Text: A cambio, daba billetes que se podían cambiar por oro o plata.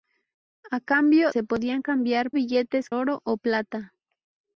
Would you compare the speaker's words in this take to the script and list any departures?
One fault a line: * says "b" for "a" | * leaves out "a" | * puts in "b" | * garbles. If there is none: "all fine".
* leaves out "daba billetes que"
* says "billetes" for "por"